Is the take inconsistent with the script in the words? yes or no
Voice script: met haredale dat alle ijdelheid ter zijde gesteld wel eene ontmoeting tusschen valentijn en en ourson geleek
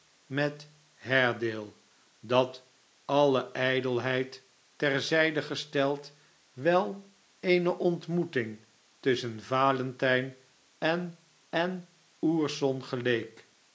no